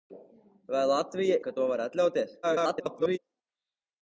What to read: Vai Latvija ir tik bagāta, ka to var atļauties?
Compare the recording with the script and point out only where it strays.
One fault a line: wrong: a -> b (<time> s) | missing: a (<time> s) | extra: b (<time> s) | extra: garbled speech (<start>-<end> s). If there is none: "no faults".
missing: ir tik bagāta (1.4 s)
extra: garbled speech (2.4-3.2 s)